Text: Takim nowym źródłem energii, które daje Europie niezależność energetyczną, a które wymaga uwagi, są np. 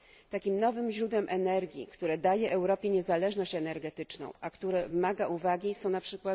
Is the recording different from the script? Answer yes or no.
no